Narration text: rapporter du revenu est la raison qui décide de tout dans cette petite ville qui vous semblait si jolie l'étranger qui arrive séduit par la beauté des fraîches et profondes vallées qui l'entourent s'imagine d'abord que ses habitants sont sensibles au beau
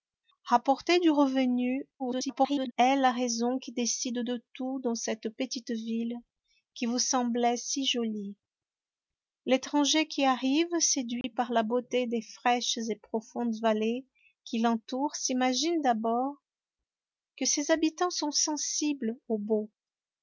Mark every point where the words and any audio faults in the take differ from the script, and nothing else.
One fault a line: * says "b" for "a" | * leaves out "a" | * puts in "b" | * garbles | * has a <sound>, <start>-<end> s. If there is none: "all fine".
* garbles
* has a dropout, 11.2-11.2 s